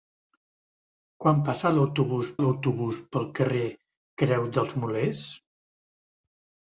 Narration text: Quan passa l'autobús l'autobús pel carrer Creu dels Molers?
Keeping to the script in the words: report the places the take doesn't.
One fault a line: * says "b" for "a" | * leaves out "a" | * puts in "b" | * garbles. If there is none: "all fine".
all fine